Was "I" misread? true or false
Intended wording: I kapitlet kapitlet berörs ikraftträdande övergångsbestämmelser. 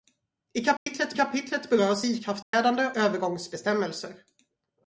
false